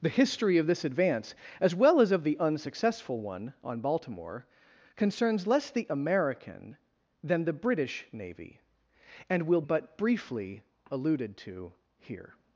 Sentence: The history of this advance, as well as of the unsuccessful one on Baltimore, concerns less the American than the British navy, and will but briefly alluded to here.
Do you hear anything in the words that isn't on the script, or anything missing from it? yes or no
no